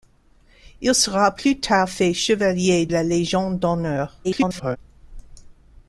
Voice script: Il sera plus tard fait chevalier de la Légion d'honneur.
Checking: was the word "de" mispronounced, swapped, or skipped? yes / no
yes